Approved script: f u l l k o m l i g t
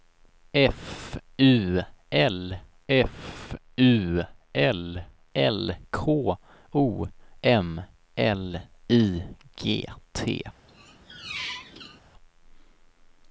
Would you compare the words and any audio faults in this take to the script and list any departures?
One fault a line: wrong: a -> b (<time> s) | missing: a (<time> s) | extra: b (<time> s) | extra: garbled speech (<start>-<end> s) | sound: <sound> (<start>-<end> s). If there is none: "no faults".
extra: f u l (2.9 s)
sound: squeak (10.7-12.0 s)